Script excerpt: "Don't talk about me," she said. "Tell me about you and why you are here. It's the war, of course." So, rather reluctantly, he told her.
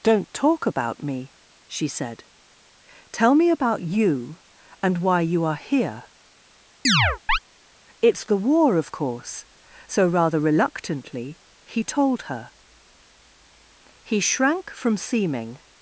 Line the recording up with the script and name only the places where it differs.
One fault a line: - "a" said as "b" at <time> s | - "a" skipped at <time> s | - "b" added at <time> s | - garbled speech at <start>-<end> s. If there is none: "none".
- "He shrank from seeming" added at 14.0 s